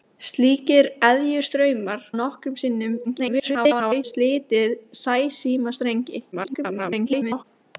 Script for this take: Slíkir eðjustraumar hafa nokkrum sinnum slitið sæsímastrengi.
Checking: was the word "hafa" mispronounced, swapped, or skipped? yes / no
yes